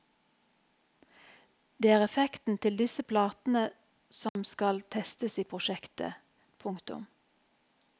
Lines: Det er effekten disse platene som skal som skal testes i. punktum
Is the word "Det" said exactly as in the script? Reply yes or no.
yes